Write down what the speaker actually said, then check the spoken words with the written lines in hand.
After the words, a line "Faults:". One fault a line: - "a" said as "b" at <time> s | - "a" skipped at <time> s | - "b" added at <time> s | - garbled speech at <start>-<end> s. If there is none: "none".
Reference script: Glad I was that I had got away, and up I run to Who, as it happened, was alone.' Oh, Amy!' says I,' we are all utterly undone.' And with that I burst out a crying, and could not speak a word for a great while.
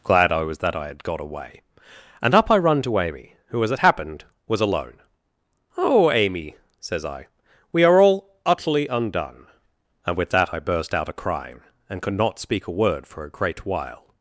Glad I was that I had got away, and up I run to Amy, who, as it happened, was alone.' Oh, Amy!' says I,' we are all utterly undone.' And with that I burst out a crying, and could not speak a word for a great while.
Faults:
- "Amy" added at 3.0 s